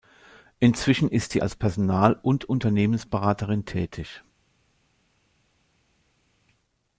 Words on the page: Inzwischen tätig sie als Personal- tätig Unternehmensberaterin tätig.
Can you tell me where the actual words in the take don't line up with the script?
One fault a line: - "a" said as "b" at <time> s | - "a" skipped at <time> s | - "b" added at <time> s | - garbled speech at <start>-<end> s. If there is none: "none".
- "tätig" said as "ist" at 1.1 s
- "tätig" said as "und" at 2.2 s